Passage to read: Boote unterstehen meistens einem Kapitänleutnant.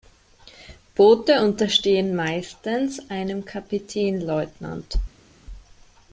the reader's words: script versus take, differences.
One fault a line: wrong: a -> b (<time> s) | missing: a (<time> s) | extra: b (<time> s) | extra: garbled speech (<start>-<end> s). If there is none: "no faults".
no faults